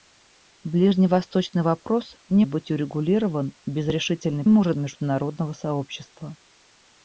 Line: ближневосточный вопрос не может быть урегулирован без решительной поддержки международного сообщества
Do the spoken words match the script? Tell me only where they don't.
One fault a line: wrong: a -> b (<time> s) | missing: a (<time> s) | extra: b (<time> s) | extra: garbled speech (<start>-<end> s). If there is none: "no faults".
missing: может (2.5 s)
wrong: поддержки -> может (4.5 s)